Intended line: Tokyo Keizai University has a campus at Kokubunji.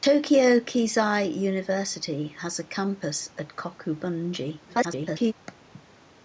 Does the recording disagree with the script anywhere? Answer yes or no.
yes